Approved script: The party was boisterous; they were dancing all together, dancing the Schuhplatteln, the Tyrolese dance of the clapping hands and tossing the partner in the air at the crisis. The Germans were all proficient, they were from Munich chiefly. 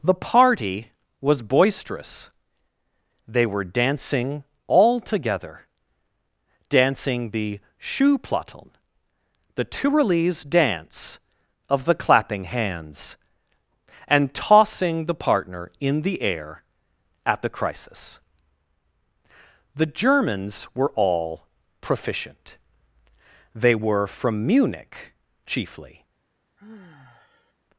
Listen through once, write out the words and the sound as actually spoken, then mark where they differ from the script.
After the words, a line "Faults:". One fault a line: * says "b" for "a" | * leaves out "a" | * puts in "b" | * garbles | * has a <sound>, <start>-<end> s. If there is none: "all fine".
The party was boisterous; they were dancing all together, dancing the Schuhplatteln, the Tyrolese dance of the clapping hands and tossing the partner in the air at the crisis. The Germans were all proficient, they were from Munich chiefly.
Faults:
* has a sigh, 26.6-27.5 s